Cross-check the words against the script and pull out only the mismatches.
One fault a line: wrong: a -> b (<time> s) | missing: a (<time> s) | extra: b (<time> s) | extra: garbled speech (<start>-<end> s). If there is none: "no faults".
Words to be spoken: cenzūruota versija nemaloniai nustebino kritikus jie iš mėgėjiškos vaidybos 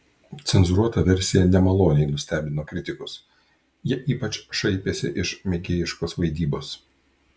extra: ypač šaipėsi (4.2 s)